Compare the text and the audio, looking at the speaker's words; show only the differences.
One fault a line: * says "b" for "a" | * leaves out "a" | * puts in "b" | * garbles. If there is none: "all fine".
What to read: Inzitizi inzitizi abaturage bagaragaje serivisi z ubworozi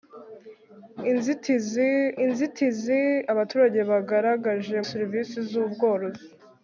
all fine